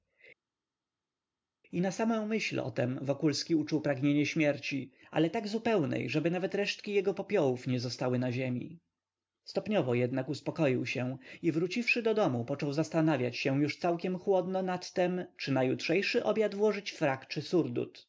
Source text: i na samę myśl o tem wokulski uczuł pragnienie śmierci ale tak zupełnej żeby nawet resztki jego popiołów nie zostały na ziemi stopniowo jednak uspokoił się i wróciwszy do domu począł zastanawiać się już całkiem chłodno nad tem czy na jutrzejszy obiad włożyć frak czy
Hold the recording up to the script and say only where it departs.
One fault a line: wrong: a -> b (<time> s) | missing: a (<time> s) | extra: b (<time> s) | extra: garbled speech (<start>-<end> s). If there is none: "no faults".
no faults